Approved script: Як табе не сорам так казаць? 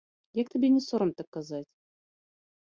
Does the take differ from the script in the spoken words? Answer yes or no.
no